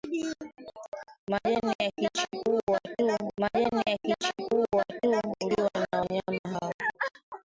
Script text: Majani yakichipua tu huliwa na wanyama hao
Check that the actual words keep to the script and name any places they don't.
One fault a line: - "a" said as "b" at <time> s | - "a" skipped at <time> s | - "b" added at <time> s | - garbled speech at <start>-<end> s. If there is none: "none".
- "majani yakichipua tu" added at 3.4 s